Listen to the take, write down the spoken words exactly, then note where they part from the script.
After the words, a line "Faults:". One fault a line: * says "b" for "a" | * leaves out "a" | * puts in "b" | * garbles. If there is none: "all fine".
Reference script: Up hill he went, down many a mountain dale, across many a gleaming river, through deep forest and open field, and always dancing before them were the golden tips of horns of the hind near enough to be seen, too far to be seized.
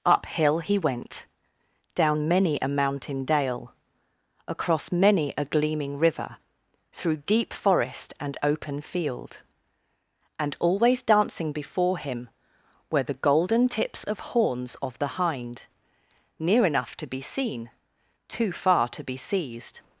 Up hill he went, down many a mountain dale, across many a gleaming river, through deep forest and open field, and always dancing before him were the golden tips of horns of the hind near enough to be seen, too far to be seized.
Faults:
* says "him" for "them"